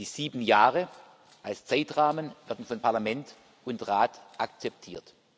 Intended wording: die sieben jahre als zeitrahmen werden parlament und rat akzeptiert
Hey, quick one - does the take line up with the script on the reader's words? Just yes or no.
no